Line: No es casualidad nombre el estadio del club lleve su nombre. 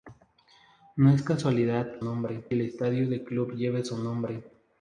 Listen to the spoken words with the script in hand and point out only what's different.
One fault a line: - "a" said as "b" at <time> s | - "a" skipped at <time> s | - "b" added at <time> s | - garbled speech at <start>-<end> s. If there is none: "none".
none